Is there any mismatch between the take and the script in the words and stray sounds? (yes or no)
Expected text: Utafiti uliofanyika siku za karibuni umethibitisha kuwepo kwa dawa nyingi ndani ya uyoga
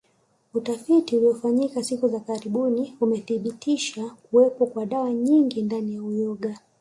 no